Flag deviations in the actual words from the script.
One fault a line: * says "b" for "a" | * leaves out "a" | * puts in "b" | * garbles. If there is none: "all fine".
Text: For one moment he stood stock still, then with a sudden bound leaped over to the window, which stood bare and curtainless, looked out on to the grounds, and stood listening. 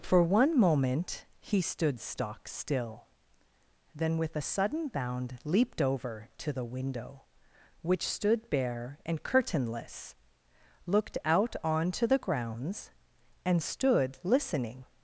all fine